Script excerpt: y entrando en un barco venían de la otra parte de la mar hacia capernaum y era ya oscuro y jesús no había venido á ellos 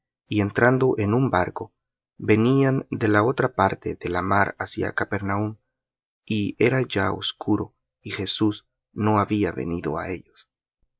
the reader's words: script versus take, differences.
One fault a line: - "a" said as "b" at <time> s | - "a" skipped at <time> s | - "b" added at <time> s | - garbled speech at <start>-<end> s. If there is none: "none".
none